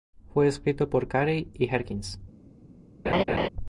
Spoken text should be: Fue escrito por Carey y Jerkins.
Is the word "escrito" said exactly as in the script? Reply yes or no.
yes